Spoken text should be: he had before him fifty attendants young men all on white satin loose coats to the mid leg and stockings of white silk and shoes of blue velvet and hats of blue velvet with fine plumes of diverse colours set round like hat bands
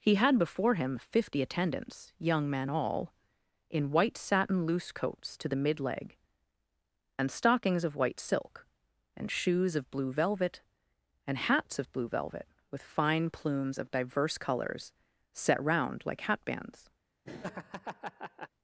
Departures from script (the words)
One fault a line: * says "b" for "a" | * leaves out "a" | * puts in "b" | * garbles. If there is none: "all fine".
* says "in" for "on"